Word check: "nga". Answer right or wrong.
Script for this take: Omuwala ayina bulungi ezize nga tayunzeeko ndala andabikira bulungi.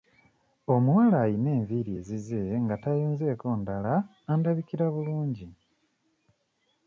right